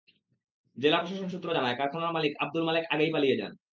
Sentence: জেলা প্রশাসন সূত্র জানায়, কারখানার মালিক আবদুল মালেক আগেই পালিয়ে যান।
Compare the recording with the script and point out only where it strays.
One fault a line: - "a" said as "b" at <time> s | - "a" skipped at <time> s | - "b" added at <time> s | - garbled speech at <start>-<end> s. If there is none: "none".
none